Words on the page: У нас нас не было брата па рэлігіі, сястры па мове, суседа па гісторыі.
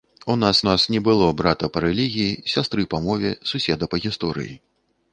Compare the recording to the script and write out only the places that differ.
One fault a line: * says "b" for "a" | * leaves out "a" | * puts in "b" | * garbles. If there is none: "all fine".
all fine